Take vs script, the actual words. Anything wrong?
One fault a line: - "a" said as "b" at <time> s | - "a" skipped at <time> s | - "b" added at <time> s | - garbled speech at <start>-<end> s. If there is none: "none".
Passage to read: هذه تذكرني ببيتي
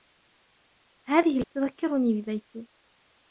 none